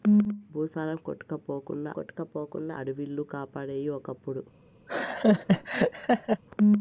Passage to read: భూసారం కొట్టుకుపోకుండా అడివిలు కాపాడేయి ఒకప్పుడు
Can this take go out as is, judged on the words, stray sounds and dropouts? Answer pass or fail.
fail